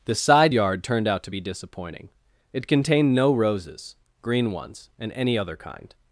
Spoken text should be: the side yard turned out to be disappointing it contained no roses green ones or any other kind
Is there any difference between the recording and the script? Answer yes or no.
yes